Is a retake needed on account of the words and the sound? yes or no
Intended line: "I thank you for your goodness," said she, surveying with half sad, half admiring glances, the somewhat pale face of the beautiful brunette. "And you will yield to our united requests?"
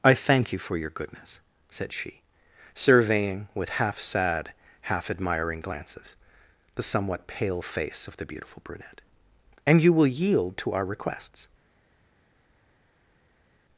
yes